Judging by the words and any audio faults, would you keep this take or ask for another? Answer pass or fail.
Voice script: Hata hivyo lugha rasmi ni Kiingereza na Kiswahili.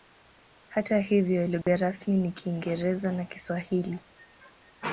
fail